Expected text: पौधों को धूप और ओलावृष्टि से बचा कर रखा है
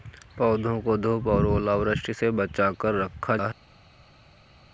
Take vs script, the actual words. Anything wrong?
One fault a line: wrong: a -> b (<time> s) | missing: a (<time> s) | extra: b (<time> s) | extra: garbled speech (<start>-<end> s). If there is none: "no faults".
no faults